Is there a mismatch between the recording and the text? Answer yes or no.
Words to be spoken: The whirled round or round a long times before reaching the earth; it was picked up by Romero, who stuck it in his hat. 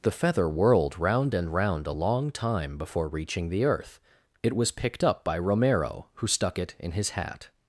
yes